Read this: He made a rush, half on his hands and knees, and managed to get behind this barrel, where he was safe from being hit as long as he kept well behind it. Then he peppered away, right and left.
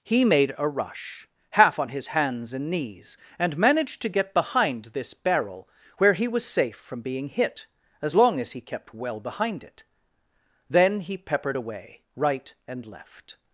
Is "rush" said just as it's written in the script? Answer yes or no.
yes